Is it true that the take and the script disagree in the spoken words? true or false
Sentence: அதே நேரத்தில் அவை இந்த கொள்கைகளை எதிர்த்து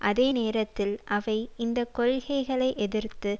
false